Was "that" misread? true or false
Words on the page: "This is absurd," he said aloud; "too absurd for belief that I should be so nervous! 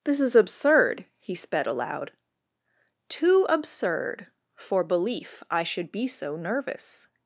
true